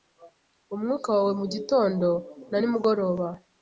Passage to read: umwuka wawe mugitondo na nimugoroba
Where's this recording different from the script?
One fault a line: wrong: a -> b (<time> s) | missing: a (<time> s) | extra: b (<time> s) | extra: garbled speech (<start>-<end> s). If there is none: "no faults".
no faults